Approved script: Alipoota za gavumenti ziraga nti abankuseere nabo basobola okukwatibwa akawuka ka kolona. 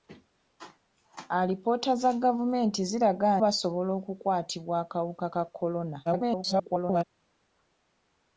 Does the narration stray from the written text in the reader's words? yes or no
yes